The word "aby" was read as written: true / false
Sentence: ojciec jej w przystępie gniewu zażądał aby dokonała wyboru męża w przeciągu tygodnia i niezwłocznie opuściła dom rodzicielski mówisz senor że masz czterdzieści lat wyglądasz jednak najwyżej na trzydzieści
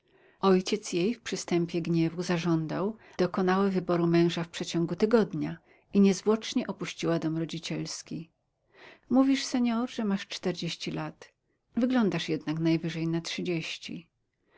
false